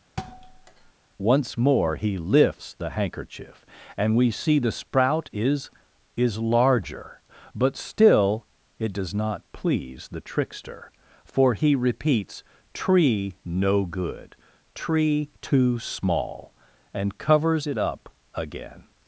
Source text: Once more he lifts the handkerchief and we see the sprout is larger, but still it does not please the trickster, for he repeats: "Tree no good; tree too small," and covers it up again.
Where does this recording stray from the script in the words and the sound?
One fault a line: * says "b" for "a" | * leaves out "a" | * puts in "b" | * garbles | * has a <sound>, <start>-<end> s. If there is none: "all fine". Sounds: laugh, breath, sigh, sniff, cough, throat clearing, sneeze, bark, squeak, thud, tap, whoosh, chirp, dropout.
* has a thud, 0.2-0.9 s
* puts in "is"